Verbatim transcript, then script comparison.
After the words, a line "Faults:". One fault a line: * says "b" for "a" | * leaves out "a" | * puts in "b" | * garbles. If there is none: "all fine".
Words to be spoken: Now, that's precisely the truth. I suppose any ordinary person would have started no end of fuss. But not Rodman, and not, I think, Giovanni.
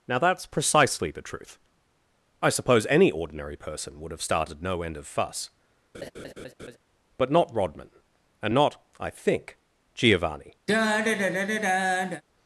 Now, that's precisely the truth. I suppose any ordinary person would have started no end of fuss. But not Rodman, and not, I think, Giovanni.
Faults:
all fine